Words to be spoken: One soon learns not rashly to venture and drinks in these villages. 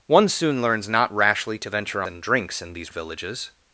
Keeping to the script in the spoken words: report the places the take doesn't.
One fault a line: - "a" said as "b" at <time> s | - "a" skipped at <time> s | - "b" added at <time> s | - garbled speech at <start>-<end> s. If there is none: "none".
none